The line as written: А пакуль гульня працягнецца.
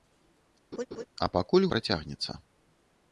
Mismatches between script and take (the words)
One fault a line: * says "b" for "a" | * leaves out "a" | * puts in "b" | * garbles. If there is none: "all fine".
* leaves out "гульня"